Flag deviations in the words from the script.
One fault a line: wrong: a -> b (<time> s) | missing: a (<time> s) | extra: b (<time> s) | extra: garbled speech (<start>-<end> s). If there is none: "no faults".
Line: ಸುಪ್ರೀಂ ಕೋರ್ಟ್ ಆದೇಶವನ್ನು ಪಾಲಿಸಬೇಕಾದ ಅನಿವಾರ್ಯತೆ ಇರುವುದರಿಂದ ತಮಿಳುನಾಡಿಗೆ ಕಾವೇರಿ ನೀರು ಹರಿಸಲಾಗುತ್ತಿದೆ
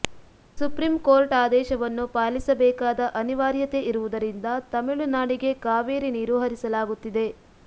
no faults